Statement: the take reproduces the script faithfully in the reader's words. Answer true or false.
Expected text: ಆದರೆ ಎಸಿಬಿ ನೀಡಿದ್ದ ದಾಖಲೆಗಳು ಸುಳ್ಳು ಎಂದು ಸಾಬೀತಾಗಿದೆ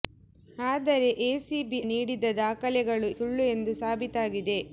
true